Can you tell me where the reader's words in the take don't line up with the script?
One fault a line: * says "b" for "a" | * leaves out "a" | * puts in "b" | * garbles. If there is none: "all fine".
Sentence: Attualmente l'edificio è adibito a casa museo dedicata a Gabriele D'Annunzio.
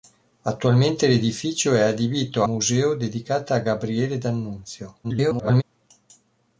* leaves out "a casa"
* garbles